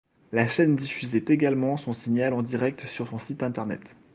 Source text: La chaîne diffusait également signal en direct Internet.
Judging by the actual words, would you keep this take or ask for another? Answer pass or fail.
fail